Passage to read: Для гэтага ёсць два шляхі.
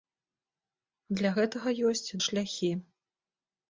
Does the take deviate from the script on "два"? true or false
true